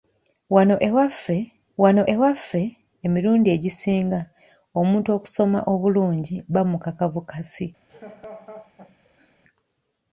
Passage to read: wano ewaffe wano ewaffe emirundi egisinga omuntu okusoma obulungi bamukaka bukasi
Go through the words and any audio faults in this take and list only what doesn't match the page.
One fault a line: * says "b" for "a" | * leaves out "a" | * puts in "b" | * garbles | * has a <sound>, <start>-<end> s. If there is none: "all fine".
* has a laugh, 7.9-9.4 s